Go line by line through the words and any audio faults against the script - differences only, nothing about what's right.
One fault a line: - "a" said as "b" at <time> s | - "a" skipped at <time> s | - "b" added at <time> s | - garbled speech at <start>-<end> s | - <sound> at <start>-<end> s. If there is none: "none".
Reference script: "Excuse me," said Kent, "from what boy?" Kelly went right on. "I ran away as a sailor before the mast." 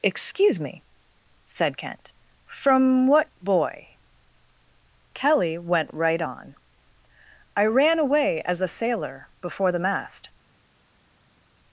none